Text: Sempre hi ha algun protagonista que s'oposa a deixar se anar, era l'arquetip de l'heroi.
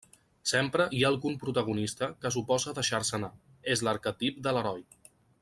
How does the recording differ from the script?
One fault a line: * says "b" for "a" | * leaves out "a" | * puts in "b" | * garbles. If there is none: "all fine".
* says "és" for "era"